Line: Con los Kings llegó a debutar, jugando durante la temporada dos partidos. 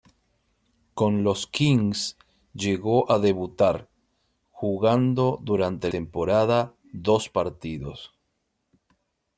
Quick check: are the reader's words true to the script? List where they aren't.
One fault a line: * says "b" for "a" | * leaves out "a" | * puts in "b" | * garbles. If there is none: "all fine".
* leaves out "la"